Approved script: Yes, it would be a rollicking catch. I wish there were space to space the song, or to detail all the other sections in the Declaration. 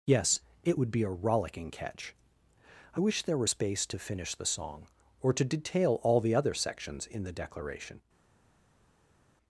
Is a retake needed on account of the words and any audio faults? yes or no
yes